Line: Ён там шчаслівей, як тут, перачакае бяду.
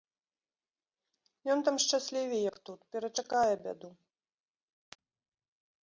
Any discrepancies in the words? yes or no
no